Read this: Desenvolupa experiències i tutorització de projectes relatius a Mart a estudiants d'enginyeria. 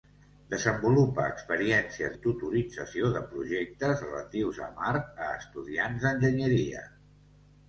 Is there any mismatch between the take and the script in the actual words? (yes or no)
no